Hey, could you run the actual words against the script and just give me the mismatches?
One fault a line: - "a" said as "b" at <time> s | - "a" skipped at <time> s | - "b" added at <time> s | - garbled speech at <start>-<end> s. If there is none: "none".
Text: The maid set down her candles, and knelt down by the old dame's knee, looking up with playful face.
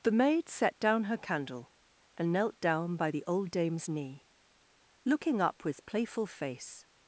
- "candles" said as "candle" at 1.2 s